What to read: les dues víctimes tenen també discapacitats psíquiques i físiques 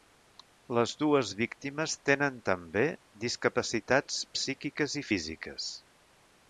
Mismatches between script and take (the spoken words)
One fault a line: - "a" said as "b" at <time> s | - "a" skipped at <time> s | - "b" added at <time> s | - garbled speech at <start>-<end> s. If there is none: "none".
none